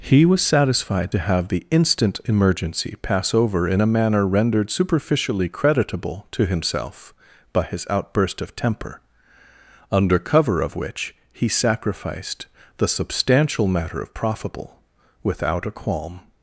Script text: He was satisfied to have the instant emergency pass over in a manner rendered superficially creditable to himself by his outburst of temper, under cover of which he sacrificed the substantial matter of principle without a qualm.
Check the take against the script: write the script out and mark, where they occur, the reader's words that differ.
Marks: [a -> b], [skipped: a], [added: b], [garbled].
He was satisfied to have the instant emergency pass over in a manner rendered superficially creditable to himself by his outburst of temper, under cover of which he sacrificed the substantial matter of [principle -> profitable] without a qualm.